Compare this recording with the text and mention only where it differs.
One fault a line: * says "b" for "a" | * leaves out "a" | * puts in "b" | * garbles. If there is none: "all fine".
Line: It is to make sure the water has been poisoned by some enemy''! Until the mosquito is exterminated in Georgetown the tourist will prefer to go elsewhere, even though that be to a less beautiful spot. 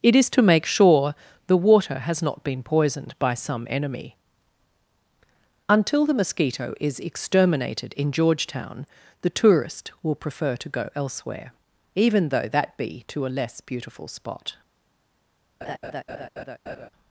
* puts in "not"